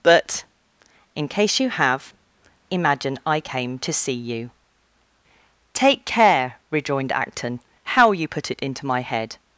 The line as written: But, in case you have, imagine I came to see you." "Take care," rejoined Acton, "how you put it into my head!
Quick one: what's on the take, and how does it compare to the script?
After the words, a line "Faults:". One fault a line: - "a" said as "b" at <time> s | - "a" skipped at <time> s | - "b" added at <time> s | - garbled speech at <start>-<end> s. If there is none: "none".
But, in case you have, imagine I came to see you." "Take care," rejoined Acton, "how you put it into my head!
Faults:
none